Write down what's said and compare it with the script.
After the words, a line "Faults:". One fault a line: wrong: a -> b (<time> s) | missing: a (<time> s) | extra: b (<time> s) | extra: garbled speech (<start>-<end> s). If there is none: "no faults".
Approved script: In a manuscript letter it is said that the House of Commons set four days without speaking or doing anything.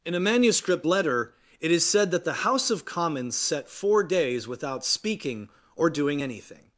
In a manuscript letter it is said that the House of Commons set four days without speaking or doing anything.
Faults:
no faults